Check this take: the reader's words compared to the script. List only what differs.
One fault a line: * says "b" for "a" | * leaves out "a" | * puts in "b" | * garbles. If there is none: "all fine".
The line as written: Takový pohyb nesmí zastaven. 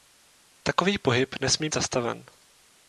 all fine